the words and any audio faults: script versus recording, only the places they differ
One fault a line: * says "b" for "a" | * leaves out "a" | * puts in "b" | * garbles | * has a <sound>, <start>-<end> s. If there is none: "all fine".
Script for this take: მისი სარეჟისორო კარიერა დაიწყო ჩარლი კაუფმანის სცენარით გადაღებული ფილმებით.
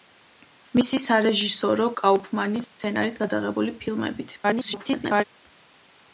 * leaves out "კარიერა დაიწყო ჩარლი"
* garbles